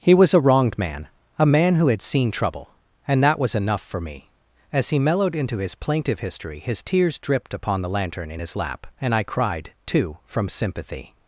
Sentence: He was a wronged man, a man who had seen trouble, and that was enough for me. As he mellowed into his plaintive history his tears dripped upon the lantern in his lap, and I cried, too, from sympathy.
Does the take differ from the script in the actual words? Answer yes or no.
no